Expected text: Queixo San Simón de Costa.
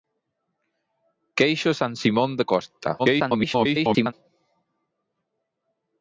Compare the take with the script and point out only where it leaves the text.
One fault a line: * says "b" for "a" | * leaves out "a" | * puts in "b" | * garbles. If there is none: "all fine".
* garbles